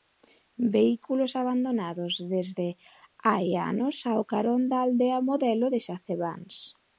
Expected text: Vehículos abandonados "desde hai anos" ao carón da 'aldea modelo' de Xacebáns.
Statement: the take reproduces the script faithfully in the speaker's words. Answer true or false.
true